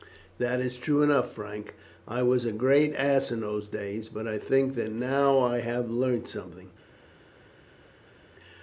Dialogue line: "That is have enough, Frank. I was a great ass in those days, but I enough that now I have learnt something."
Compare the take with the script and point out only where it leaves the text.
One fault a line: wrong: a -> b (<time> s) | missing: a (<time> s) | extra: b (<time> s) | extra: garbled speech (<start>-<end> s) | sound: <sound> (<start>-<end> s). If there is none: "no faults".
wrong: have -> true (0.8 s)
wrong: enough -> think (4.4 s)